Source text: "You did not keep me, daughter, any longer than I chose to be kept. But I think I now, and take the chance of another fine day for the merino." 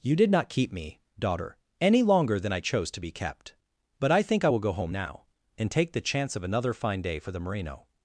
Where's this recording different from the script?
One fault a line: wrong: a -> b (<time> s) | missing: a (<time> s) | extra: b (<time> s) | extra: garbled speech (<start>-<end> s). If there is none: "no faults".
extra: will go home (4.5 s)